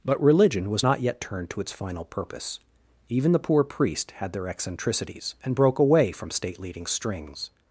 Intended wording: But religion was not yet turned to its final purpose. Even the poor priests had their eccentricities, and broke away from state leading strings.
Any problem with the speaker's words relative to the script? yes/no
yes